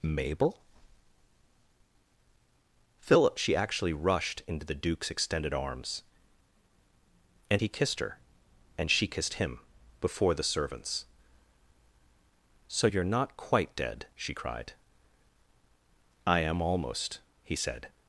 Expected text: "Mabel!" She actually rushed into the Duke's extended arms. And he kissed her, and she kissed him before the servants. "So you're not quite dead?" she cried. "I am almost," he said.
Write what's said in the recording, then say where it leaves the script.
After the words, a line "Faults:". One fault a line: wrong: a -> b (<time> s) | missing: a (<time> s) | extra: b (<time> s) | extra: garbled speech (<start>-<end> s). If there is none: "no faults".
"Mabel!" philip She actually rushed into the Duke's extended arms. And he kissed her, and she kissed him before the servants. "So you're not quite dead?" she cried. "I am almost," he said.
Faults:
extra: philip (3.0 s)